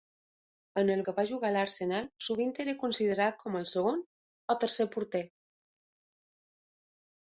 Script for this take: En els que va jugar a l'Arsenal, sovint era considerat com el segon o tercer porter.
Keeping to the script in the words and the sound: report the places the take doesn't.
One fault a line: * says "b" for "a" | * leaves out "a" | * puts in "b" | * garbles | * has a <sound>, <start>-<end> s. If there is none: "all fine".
all fine